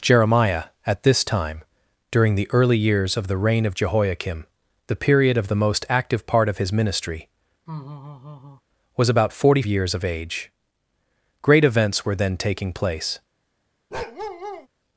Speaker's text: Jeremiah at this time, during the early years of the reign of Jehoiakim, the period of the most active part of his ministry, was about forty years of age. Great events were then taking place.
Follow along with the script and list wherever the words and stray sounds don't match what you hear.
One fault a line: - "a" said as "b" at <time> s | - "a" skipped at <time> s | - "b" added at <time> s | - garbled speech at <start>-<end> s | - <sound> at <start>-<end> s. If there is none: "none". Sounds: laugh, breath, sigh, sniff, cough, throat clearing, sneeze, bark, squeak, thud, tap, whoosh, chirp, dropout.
- laugh at 7.7-8.6 s
- bark at 13.9-14.7 s